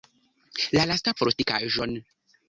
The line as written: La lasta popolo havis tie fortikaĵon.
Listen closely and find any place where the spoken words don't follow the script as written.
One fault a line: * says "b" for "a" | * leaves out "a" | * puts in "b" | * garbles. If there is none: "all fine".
* leaves out "popolo havis tie"